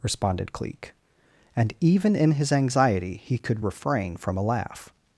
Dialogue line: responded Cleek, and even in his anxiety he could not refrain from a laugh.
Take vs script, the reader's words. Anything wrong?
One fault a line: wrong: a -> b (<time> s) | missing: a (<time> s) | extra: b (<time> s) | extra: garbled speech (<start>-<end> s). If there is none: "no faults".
missing: not (3.6 s)